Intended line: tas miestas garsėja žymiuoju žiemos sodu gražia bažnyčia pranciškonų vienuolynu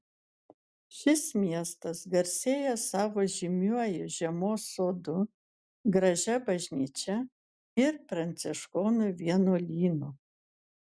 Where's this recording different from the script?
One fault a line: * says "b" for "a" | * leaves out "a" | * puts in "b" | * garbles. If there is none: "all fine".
* says "šis" for "tas"
* puts in "savo"
* puts in "ir"